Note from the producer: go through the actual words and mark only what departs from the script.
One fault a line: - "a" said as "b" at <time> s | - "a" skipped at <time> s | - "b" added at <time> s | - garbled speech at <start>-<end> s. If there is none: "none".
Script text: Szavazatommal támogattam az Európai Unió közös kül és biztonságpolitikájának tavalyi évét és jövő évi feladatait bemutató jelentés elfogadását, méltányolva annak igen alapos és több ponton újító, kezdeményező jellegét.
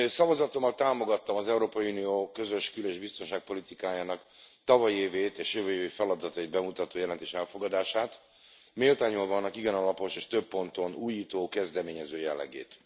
none